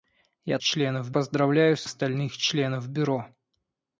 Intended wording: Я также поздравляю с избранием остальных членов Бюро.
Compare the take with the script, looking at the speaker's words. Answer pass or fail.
fail